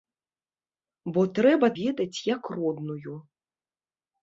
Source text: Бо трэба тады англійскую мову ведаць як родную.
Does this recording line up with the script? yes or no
no